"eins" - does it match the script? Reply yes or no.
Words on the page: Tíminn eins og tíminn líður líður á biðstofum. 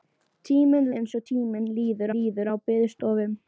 yes